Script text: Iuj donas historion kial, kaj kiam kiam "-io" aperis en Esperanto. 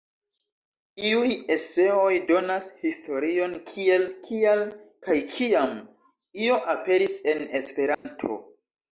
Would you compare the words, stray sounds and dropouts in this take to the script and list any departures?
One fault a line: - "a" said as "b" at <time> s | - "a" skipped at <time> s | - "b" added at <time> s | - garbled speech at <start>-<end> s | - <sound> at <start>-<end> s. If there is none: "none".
- "eseoj" added at 1.6 s
- "kiel" added at 3.7 s
- "kiam" skipped at 5.8 s
- dropout at 7.9-8.1 s